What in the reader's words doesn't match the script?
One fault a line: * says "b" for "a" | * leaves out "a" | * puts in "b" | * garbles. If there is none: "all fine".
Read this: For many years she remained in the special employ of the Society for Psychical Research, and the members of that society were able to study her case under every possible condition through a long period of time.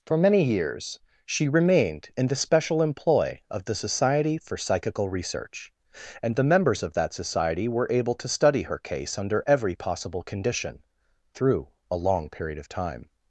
all fine